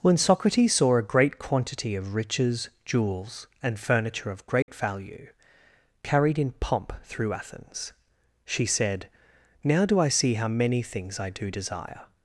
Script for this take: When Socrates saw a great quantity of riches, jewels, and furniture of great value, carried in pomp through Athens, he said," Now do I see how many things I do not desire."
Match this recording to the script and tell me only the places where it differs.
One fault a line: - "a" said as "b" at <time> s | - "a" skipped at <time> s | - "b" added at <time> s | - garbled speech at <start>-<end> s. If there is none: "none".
- "he" said as "she" at 8.4 s
- "not" skipped at 11.5 s